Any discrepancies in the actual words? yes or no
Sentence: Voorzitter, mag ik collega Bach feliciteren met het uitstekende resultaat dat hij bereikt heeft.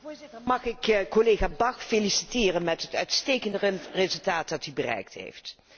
no